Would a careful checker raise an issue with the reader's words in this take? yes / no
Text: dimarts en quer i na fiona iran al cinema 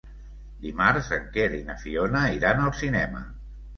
no